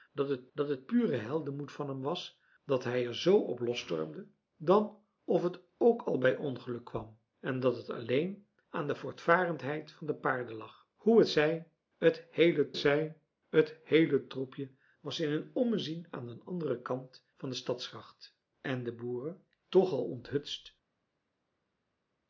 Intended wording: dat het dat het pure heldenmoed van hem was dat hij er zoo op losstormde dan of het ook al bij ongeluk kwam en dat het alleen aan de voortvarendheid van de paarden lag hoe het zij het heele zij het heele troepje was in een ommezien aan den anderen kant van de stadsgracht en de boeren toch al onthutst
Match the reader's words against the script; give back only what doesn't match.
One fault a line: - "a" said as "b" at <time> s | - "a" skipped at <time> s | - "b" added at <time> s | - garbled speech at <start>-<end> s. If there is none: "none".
none